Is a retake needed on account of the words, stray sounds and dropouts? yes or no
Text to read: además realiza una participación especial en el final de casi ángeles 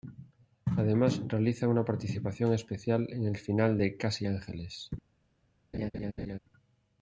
yes